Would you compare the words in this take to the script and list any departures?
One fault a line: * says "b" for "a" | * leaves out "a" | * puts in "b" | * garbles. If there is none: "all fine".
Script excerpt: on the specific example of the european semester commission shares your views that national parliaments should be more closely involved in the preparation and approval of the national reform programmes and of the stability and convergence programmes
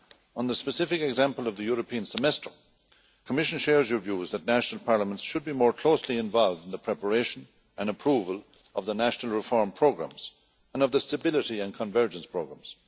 all fine